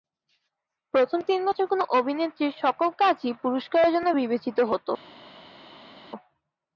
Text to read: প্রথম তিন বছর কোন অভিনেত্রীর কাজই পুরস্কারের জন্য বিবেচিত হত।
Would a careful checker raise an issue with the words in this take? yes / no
yes